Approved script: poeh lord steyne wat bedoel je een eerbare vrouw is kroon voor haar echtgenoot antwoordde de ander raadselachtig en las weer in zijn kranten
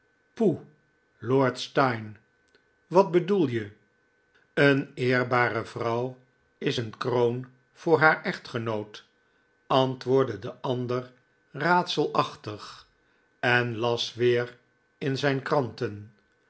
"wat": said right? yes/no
yes